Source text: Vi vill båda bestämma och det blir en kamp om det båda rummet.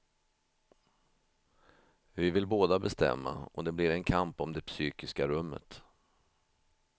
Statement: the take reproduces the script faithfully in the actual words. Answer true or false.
false